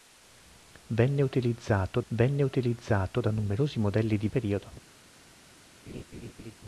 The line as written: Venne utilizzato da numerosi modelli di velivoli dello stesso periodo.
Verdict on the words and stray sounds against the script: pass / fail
fail